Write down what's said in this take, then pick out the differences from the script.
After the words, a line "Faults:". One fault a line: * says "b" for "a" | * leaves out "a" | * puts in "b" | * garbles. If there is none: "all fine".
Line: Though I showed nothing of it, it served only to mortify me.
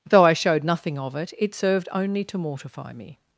Though I showed nothing of it, it served only to mortify me.
Faults:
all fine